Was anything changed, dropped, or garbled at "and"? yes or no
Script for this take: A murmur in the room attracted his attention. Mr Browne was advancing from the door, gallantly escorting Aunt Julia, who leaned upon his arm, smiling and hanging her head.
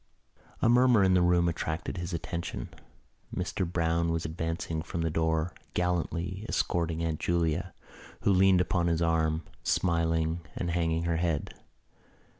no